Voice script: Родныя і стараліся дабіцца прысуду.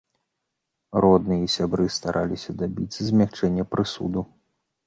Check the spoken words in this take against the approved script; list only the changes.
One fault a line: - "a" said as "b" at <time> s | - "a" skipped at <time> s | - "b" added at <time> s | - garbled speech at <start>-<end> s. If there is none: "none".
- "сябры" added at 1.6 s
- "змякчэння" added at 3.1 s